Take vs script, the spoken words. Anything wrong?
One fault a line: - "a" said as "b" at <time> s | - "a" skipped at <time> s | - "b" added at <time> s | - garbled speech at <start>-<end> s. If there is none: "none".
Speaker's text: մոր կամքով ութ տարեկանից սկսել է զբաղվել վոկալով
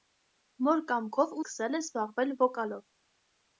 - "ութ տարեկանից" skipped at 1.4 s